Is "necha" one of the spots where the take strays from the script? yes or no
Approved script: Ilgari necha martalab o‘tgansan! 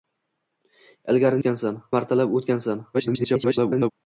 yes